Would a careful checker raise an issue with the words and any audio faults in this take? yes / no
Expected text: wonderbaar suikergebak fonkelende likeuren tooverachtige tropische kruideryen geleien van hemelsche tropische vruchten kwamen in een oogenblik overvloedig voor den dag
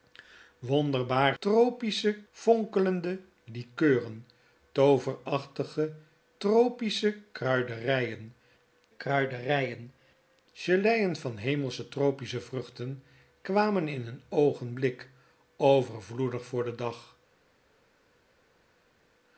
yes